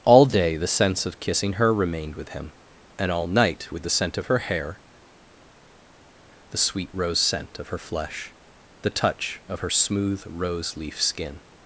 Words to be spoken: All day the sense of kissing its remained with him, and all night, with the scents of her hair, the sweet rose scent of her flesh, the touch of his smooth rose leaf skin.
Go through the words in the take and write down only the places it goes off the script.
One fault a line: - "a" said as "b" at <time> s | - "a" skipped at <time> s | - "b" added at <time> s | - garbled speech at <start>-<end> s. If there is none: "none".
- "its" said as "her" at 1.5 s
- "scents" said as "scent" at 3.9 s
- "his" said as "her" at 9.6 s